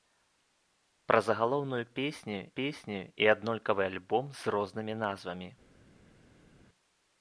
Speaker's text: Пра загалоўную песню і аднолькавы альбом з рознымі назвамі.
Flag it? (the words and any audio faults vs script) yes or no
yes